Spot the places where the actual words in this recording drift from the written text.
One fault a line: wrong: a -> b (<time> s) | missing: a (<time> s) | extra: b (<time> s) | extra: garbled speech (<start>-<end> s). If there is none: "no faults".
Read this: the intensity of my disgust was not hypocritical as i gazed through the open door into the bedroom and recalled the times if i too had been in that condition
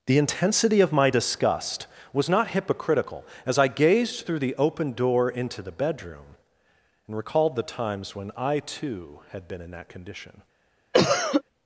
wrong: if -> when (8.1 s)